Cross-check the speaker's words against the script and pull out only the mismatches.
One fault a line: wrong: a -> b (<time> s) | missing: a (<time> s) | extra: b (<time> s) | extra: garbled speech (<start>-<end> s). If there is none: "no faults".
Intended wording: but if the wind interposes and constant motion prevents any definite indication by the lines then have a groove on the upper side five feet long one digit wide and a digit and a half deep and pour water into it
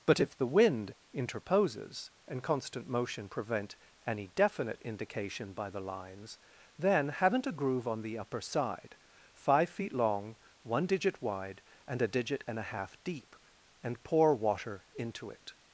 wrong: prevents -> prevent (3.3 s)
wrong: have -> haven't (7.1 s)